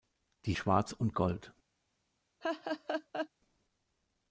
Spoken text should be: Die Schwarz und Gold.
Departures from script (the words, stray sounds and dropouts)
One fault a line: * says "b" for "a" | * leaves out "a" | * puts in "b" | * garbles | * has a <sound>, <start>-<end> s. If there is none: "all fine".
* has a laugh, 2.4-3.3 s